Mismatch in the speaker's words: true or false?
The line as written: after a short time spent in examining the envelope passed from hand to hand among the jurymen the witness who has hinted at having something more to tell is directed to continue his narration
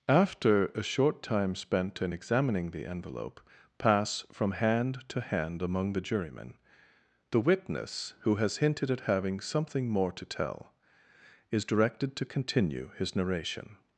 true